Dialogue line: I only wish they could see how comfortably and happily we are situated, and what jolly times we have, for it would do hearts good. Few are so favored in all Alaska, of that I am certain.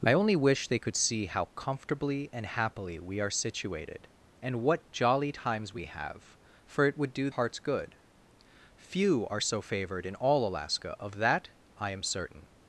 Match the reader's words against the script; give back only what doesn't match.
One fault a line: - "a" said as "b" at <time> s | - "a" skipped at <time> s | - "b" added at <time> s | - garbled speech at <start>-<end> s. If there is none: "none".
none